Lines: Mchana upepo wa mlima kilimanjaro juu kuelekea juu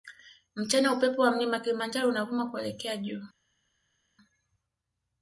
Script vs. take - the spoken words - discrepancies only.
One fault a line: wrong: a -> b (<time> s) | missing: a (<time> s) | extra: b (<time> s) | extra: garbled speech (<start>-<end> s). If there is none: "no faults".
wrong: juu -> unavuma (2.1 s)